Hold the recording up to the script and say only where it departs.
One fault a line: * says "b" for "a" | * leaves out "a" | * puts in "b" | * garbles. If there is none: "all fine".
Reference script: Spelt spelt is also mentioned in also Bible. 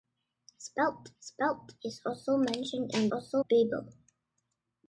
all fine